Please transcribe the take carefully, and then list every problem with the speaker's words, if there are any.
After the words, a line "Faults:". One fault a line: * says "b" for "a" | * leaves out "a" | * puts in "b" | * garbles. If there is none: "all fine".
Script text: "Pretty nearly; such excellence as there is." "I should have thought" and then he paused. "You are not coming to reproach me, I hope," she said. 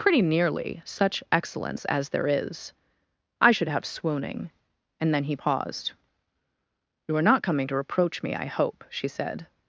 "Pretty nearly; such excellence as there is." "I should have swooning" and then he paused. "You are not coming to reproach me, I hope," she said.
Faults:
* says "swooning" for "thought"